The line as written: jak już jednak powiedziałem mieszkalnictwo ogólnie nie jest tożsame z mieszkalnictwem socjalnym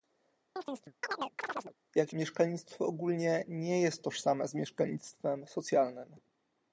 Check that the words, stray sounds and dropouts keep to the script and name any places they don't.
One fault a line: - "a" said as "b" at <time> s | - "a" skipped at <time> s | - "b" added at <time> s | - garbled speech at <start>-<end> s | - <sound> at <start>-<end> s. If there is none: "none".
- chirp at 0.6-1.7 s
- "już jednak powiedziałem" skipped at 2.1 s